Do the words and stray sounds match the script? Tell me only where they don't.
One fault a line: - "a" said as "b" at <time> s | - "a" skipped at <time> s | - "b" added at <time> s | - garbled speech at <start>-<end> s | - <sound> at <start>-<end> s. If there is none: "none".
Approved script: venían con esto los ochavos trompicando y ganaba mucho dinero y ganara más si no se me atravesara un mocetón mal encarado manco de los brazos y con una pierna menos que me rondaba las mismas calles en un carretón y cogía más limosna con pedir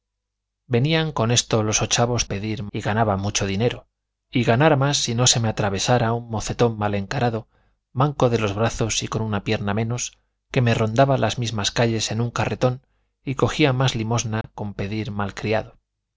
- "trompicando" said as "pedir" at 2.3 s
- dropout at 14.4-14.4 s